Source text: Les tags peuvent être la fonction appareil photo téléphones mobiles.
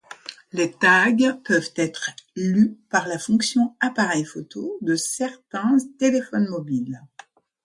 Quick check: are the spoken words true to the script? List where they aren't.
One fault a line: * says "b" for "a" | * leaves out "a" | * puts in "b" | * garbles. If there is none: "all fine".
* puts in "lus par"
* puts in "de certains"